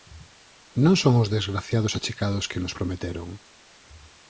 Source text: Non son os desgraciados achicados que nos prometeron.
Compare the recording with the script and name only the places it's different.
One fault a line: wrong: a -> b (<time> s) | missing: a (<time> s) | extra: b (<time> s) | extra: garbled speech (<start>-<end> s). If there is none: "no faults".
no faults